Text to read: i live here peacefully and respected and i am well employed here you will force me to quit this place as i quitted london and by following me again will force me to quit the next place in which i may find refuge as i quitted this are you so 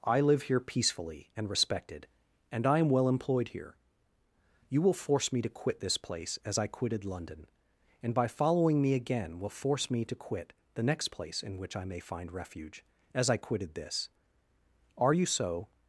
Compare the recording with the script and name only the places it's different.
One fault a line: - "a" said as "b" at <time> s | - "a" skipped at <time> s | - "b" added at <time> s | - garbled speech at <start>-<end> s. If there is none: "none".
none